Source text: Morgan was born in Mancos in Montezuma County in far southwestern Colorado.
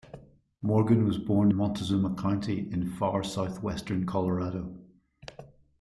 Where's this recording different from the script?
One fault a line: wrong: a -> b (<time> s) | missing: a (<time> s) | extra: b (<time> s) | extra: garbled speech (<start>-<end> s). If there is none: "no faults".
missing: in Mancos in (1.5 s)